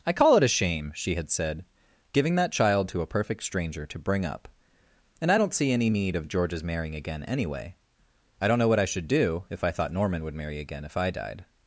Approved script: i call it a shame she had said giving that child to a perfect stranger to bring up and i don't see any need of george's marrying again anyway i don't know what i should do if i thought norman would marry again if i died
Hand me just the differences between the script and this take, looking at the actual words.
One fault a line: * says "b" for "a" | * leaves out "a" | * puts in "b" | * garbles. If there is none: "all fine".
all fine